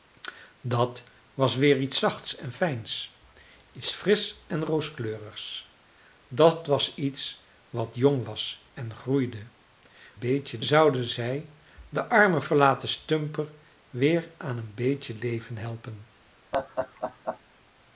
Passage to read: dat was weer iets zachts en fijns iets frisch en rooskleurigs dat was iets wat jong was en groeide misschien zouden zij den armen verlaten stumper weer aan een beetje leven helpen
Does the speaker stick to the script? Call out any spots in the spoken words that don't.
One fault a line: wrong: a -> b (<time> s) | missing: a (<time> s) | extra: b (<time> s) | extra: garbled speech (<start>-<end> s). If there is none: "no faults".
wrong: misschien -> beetje (10.2 s)